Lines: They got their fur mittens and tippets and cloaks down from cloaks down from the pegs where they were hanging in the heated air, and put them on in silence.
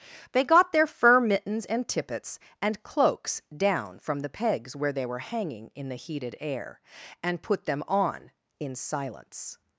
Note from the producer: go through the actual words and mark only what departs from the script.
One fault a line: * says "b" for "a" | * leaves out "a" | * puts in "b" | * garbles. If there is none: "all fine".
* leaves out "cloaks down from"